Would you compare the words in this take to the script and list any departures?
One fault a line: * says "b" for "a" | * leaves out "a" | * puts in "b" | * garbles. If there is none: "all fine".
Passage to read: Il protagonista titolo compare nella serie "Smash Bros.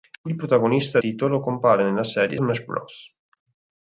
all fine